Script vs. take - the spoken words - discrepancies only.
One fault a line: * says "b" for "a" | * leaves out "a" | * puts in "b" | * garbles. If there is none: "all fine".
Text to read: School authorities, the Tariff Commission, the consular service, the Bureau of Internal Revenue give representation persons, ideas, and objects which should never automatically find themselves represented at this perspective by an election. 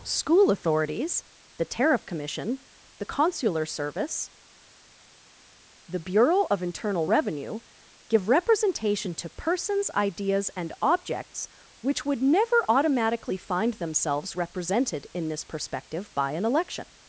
* puts in "to"
* says "would" for "should"
* says "in" for "at"